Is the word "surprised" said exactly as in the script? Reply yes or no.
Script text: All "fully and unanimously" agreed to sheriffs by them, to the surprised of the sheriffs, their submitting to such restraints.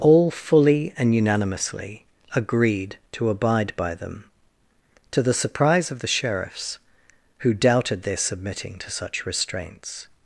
no